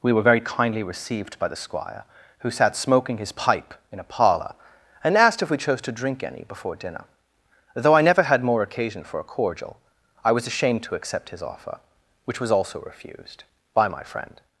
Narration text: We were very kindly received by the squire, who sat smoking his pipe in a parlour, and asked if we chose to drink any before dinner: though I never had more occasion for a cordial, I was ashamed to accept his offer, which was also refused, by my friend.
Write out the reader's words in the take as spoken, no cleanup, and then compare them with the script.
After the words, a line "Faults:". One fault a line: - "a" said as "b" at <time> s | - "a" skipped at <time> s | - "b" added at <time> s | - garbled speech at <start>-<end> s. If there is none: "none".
We were very kindly received by the squire, who sat smoking his pipe in a parlour, and asked if we chose to drink any before dinner: though I never had more occasion for a cordial, I was ashamed to accept his offer, which was also refused, by my friend.
Faults:
none